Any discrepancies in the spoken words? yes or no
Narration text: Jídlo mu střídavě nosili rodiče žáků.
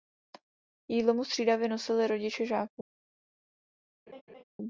no